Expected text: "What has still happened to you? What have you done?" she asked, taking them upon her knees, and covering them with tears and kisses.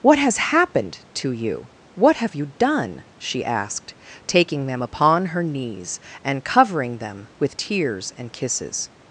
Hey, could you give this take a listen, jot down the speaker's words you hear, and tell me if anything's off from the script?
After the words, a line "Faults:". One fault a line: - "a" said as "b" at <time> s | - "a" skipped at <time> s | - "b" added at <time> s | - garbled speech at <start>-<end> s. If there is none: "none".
"What has happened to you? What have you done?" she asked, taking them upon her knees, and covering them with tears and kisses.
Faults:
- "still" skipped at 0.4 s